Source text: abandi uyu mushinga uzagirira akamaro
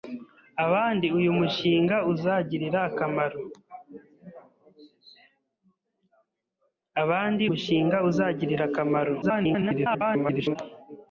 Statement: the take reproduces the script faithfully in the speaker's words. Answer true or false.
false